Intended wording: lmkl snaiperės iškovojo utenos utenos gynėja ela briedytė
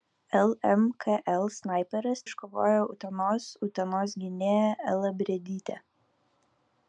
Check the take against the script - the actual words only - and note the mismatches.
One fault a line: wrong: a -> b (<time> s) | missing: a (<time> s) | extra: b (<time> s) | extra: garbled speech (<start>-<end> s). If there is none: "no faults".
no faults